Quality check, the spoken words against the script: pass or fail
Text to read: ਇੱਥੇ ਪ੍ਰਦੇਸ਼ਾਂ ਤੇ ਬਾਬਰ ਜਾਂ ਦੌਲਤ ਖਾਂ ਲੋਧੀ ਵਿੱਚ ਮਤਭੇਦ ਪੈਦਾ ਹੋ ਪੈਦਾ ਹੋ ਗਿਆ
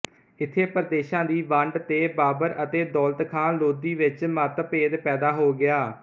fail